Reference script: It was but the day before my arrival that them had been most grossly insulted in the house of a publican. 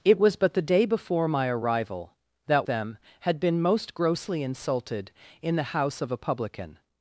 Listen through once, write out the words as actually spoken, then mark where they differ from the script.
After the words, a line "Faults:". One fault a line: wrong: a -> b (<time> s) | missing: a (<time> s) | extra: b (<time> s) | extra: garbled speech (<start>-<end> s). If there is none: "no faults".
It was but the day before my arrival that them had been most grossly insulted in the house of a publican.
Faults:
no faults